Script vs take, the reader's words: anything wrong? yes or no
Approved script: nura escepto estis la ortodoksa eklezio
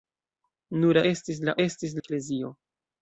yes